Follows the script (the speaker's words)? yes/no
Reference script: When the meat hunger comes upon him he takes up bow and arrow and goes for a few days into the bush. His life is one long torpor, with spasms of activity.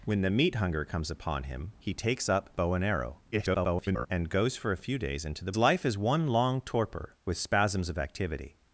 no